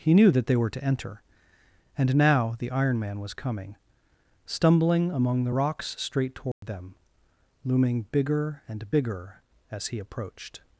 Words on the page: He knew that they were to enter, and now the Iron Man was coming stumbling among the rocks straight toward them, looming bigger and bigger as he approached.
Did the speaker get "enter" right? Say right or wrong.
right